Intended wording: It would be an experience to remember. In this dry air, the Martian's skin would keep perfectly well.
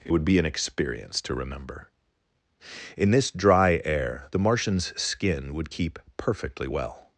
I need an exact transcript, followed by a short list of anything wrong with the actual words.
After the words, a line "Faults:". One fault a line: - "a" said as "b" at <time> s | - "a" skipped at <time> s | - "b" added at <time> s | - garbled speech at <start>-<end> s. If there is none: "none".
It would be an experience to remember. In this dry air, the Martian's skin would keep perfectly well.
Faults:
none